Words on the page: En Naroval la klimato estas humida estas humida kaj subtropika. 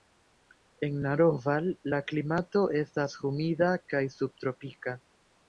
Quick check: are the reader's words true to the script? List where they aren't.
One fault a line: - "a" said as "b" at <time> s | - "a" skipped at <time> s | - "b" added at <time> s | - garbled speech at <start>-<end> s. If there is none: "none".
- "estas humida" skipped at 3.7 s